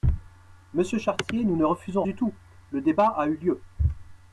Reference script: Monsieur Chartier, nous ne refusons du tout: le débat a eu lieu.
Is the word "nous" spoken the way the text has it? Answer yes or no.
yes